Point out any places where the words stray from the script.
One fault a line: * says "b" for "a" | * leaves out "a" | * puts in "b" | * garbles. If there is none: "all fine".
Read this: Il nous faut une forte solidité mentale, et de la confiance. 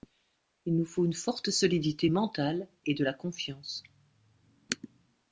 all fine